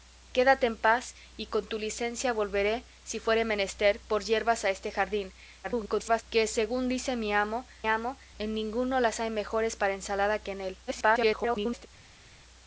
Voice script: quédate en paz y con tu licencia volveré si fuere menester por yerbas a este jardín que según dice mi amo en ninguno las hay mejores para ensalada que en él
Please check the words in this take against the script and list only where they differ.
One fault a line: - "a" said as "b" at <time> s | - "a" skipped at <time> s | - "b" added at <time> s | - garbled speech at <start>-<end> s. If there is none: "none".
- garbled speech at 5.6-6.2 s
- "amo" added at 7.9 s
- garbled speech at 10.9-11.9 s